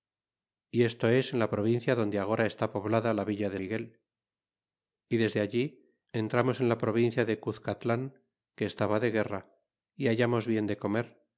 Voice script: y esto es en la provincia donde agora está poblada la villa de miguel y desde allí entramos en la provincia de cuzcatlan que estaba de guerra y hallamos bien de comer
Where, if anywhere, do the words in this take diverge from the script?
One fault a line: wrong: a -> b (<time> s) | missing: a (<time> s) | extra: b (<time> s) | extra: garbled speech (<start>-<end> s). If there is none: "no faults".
no faults